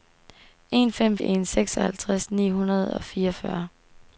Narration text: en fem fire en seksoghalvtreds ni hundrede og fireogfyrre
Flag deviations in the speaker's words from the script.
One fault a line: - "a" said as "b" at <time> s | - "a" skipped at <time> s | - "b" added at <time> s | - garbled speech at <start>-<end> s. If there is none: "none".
- "fire" skipped at 1.2 s